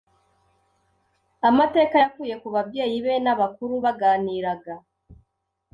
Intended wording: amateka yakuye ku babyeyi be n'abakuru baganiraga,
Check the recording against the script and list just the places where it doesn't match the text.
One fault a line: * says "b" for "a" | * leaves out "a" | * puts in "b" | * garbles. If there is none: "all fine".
all fine